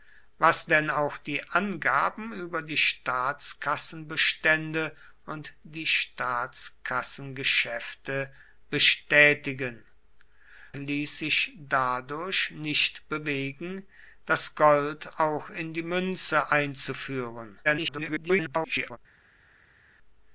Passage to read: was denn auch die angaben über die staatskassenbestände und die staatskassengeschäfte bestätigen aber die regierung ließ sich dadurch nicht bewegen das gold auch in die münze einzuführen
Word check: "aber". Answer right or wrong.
wrong